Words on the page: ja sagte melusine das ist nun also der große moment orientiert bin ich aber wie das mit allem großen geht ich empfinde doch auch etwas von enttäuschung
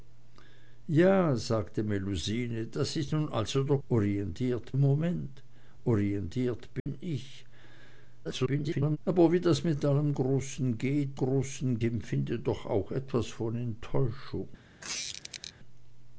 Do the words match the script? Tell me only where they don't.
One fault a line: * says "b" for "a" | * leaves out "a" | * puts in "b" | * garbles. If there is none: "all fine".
* says "orientiert" for "große"
* garbles
* says "großen" for "ich"